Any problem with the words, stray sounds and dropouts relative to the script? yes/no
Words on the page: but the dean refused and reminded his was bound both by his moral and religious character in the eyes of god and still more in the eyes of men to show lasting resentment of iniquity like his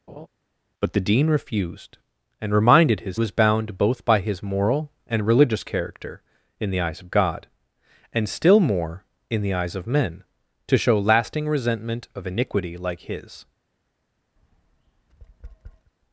yes